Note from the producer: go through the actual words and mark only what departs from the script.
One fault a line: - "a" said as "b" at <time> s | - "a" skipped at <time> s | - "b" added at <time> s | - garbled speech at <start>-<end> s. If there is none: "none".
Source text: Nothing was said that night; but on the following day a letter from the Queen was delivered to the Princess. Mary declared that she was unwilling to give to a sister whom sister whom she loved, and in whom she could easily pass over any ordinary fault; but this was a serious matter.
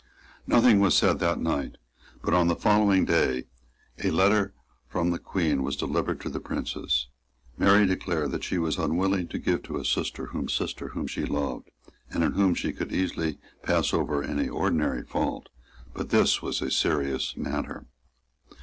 none